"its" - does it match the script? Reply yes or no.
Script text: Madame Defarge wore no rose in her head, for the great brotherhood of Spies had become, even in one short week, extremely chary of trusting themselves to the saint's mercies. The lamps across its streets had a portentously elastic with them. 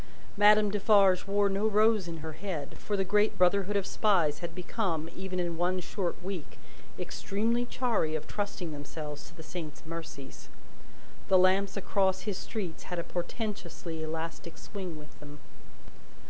no